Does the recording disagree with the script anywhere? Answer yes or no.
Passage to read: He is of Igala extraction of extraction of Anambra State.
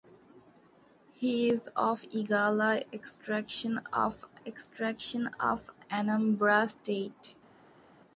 no